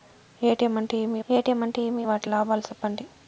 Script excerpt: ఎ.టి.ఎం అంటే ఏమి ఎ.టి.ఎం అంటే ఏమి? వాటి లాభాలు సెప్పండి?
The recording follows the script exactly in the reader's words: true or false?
true